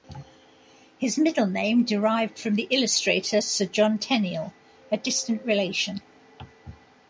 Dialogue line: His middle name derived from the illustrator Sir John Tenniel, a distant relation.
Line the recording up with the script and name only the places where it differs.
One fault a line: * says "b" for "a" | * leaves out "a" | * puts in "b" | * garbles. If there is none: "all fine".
all fine